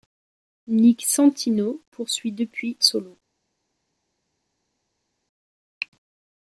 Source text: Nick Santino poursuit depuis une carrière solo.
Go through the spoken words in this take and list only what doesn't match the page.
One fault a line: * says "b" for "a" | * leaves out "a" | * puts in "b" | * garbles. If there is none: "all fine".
* leaves out "une carrière"